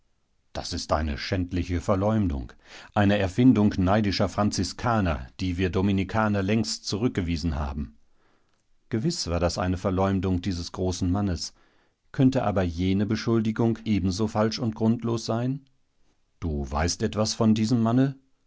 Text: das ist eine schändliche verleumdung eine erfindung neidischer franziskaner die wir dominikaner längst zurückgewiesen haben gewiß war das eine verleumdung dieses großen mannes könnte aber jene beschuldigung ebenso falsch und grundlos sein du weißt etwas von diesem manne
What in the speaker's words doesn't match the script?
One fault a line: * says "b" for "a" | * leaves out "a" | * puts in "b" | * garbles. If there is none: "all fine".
all fine